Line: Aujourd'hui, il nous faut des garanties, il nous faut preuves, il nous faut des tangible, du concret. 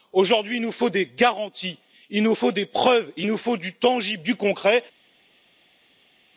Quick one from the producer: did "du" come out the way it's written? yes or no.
yes